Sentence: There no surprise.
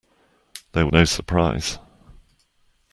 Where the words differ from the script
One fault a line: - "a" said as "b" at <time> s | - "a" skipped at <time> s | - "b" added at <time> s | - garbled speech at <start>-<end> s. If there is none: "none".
none